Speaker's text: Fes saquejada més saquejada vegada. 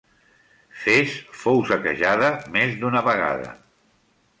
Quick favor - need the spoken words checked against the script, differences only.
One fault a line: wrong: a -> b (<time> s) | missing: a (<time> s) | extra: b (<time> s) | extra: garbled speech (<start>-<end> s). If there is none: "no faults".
extra: fou (1.4 s)
wrong: saquejada -> d'una (2.8 s)